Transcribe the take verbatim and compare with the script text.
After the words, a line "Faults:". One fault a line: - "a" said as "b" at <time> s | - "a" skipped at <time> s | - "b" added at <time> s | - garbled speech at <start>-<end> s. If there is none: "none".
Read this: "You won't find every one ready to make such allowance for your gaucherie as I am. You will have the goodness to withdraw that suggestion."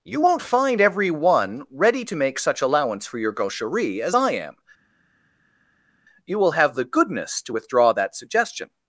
"You won't find every one ready to make such allowance for your gaucherie as I am. You will have the goodness to withdraw that suggestion."
Faults:
none